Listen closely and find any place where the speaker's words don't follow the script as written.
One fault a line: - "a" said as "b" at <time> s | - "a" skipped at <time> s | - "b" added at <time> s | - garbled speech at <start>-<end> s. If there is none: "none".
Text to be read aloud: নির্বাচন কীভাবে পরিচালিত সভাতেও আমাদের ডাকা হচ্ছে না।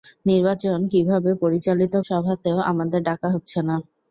none